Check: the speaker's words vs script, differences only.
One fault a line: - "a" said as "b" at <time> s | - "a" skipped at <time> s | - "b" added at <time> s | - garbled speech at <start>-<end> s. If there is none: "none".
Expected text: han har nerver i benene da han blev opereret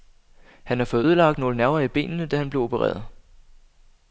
- "fået ødelagt nogle" added at 0.8 s